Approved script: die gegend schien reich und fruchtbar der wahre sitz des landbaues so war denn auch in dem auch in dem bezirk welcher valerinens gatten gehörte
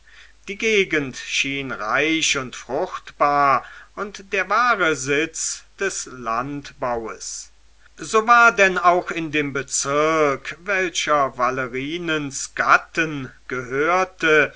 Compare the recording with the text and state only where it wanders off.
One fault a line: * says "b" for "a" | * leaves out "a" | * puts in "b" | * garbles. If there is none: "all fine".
* puts in "und"
* leaves out "auch in dem"